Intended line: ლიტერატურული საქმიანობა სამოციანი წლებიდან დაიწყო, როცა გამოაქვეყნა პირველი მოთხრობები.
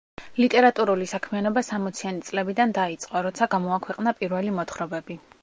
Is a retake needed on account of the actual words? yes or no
no